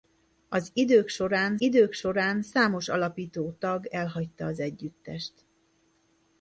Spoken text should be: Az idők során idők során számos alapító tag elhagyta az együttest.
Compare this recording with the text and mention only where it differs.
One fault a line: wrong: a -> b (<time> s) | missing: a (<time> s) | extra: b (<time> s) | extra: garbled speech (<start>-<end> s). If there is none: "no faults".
no faults